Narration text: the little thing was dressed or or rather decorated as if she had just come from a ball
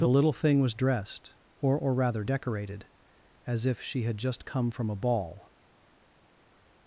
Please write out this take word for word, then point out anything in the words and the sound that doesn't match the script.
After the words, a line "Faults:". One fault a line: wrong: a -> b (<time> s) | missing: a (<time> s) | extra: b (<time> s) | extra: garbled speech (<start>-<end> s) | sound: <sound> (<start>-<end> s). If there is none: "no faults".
the little thing was dressed or or rather decorated as if she had just come from a ball
Faults:
no faults